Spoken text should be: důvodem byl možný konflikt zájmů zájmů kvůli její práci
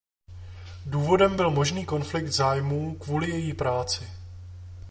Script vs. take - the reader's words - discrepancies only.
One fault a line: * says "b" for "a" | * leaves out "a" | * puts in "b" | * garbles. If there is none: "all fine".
* leaves out "zájmů"